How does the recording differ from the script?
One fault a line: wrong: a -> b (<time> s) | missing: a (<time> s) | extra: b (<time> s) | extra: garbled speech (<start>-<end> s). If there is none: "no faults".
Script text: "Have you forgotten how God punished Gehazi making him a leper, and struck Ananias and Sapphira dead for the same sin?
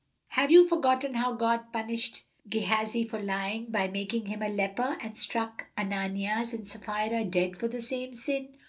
extra: for lying by (3.0 s)